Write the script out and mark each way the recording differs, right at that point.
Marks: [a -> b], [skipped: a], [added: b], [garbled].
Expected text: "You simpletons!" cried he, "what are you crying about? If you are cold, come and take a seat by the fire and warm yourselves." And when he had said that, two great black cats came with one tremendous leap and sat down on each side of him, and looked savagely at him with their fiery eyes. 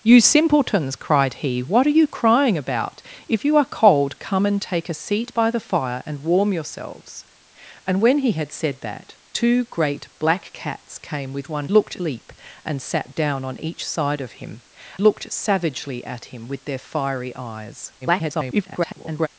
"You simpletons!" cried he, "what are you crying about? If you are cold, come and take a seat by the fire and warm yourselves." And when he had said that, two great black cats came with one [tremendous -> looked] leap and sat down on each side of him, [skipped: and] looked savagely at him with their fiery eyes. [garbled]